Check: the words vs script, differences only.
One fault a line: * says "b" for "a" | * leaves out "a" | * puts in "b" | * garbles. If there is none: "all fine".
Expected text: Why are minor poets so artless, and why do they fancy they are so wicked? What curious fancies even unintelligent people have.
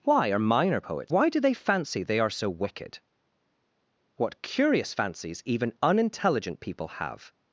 * leaves out "so artless and"